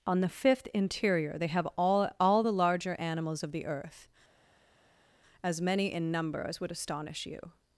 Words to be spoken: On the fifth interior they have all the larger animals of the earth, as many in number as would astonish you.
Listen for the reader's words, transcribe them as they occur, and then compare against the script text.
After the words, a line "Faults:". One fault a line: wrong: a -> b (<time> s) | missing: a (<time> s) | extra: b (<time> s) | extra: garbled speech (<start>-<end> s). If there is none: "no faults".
On the fifth interior they have all all the larger animals of the earth, as many in number as would astonish you.
Faults:
extra: all (2.2 s)